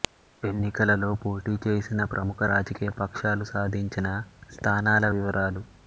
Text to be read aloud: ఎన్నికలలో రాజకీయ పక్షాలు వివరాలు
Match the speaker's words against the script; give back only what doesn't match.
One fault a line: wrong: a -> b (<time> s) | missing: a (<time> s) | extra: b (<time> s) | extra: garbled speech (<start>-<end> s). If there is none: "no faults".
extra: పోటీ చేసిన ప్రముఖ (1.2 s)
extra: సాధించిన స్థానాల (3.5 s)